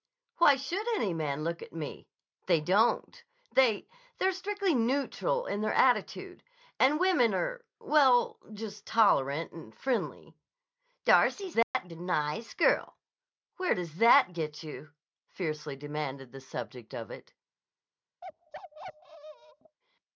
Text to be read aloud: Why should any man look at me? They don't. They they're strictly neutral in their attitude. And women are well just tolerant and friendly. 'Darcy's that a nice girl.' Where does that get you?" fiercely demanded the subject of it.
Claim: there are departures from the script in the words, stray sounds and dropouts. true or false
true